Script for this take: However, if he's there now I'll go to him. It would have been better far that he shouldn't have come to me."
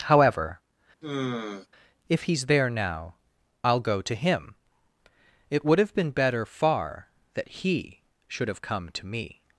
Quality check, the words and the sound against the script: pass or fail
fail